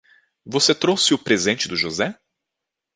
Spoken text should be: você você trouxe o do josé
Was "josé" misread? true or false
false